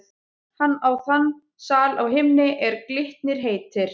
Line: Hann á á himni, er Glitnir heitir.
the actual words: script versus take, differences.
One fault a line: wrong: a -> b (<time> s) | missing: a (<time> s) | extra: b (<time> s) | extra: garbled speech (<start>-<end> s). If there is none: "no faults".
extra: þann sal (1.1 s)